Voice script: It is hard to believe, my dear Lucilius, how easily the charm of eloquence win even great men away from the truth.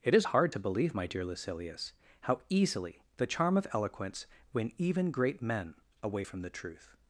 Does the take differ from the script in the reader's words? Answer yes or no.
no